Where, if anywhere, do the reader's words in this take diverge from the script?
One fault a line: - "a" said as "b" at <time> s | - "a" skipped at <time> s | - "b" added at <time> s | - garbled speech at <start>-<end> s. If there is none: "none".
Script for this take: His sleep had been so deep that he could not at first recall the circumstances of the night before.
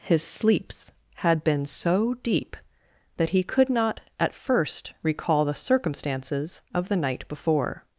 - "sleep" said as "sleeps" at 0.2 s